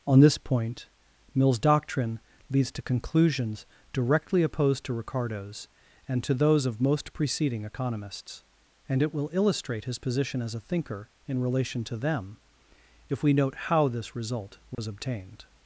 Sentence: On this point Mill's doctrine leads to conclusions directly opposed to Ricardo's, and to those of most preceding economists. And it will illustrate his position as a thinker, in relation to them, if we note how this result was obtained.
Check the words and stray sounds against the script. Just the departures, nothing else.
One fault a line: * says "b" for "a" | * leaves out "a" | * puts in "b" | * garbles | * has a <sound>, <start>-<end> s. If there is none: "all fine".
* has a dropout, 14.7-14.8 s